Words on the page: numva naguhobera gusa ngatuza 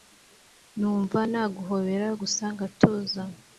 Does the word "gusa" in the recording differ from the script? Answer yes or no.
no